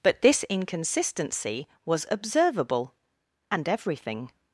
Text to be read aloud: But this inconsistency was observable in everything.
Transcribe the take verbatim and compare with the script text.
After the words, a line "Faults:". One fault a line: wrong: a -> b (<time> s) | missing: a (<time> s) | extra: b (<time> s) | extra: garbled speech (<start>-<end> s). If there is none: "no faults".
But this inconsistency was observable and everything.
Faults:
wrong: in -> and (3.5 s)